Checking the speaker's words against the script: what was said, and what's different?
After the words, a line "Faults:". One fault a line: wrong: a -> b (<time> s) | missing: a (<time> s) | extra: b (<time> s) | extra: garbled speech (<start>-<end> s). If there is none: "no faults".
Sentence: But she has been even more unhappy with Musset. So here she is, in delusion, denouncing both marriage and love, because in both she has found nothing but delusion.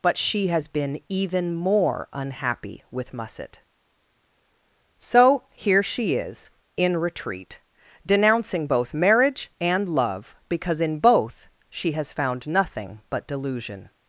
But she has been even more unhappy with Musset. So here she is, in retreat, denouncing both marriage and love, because in both she has found nothing but delusion.
Faults:
wrong: delusion -> retreat (7.0 s)